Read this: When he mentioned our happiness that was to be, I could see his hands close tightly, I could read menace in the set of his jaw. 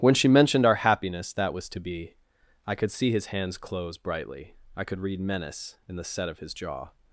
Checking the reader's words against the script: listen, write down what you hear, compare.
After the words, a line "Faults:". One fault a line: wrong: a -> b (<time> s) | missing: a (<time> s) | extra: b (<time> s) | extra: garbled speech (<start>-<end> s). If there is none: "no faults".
When she mentioned our happiness that was to be, I could see his hands close brightly, I could read menace in the set of his jaw.
Faults:
wrong: he -> she (0.1 s)
wrong: tightly -> brightly (4.0 s)